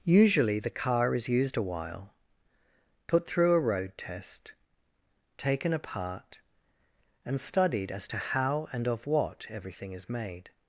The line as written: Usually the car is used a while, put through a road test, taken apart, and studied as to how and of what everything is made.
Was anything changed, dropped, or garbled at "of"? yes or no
no